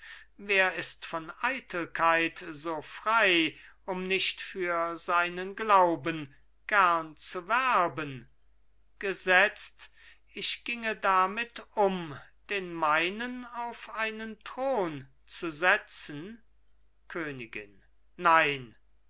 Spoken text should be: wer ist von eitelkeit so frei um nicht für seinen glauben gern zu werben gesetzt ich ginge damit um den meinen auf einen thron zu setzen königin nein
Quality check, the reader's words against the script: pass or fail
pass